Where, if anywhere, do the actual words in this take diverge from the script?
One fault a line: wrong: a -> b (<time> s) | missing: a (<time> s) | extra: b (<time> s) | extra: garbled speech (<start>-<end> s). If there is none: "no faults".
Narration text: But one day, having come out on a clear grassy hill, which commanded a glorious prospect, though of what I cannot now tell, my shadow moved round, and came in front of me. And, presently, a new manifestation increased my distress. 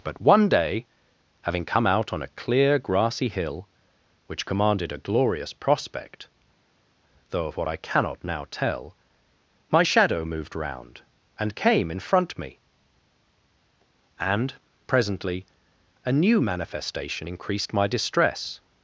missing: of (12.4 s)